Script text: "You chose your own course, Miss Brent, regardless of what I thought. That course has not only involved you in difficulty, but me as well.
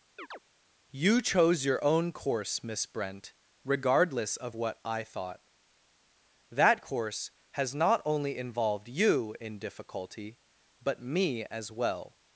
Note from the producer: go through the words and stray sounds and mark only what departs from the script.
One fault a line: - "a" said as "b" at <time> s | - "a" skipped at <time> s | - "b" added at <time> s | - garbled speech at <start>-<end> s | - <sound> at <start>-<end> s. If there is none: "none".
- chirp at 0.2-0.4 s